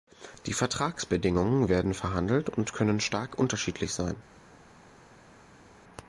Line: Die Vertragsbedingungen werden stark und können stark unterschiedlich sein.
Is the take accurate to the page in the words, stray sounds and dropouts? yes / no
no